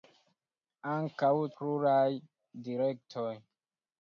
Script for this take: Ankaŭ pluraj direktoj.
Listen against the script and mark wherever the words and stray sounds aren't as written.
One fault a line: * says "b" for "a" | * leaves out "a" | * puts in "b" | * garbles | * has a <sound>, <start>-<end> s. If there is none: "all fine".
all fine